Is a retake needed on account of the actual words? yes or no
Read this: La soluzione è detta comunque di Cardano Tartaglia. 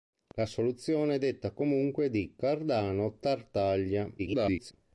yes